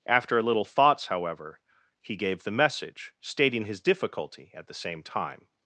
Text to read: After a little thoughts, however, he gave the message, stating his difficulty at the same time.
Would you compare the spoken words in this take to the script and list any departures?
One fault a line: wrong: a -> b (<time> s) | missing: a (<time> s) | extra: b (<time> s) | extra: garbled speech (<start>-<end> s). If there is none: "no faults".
no faults